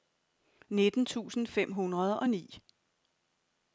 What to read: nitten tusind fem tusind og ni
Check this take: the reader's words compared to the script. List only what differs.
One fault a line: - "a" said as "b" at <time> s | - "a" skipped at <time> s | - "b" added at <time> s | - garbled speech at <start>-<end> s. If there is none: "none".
- "tusind" said as "hundrede" at 1.7 s